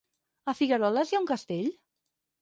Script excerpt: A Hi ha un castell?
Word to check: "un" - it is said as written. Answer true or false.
true